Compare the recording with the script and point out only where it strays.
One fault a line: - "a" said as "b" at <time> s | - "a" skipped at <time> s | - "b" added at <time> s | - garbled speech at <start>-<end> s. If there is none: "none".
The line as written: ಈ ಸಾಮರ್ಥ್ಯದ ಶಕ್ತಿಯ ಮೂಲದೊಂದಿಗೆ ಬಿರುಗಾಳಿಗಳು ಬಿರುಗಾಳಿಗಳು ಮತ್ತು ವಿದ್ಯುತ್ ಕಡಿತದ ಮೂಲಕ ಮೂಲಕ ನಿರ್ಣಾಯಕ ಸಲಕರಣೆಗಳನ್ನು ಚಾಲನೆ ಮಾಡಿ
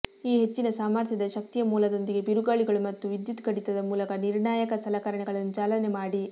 - "ಹೆಚ್ಚಿನ" added at 0.3 s
- "ಬಿರುಗಾಳಿಗಳು" skipped at 2.8 s
- "ಮೂಲಕ" skipped at 4.2 s